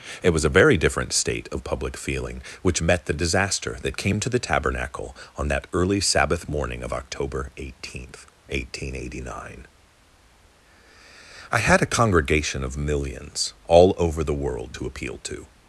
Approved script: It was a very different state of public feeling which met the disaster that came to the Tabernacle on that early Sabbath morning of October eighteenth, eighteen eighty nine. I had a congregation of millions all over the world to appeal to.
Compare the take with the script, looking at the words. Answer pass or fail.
pass